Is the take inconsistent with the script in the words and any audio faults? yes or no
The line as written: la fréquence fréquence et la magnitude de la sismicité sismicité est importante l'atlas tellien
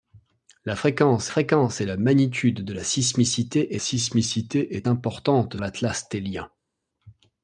no